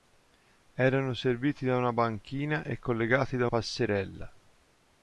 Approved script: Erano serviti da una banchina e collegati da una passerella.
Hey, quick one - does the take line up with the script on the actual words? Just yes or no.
no